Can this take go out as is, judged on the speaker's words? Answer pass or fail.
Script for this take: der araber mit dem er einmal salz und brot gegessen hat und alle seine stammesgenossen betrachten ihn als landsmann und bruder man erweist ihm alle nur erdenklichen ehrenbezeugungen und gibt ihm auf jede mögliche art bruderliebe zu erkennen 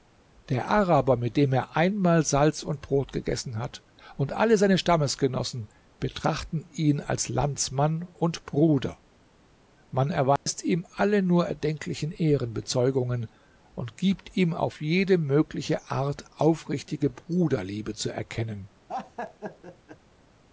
fail